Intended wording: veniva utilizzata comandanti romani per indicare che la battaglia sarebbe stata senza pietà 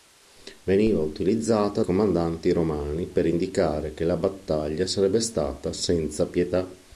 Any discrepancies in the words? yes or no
no